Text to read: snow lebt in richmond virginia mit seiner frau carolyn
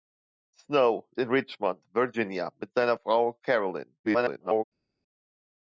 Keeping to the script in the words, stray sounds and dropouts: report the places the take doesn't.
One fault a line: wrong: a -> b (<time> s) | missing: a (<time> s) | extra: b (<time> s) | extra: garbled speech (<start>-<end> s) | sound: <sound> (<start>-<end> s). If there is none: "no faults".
missing: lebt (1.1 s)
extra: garbled speech (4.0-4.6 s)